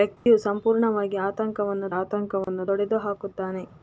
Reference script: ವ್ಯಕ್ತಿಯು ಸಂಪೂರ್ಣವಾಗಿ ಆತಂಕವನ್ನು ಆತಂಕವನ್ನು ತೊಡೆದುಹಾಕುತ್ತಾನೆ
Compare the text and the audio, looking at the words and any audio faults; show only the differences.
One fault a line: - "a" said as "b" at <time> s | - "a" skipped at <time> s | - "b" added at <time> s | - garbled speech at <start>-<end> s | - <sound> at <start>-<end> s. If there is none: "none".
- dropout at 0.2-0.3 s
- dropout at 2.4-2.5 s